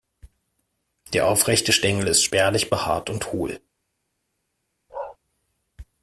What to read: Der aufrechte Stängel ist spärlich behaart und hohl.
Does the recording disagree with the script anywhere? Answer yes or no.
no